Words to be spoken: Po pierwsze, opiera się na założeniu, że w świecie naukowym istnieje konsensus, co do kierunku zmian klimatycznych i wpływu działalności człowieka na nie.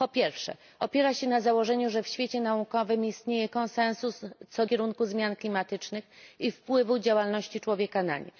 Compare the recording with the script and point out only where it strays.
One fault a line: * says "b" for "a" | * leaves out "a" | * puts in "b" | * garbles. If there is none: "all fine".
* leaves out "do"